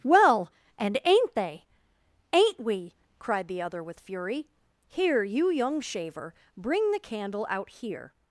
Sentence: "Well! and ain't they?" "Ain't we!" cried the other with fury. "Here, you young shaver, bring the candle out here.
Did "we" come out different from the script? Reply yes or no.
no